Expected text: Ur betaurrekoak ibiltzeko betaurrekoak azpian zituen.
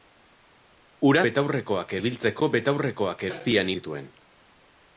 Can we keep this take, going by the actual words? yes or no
yes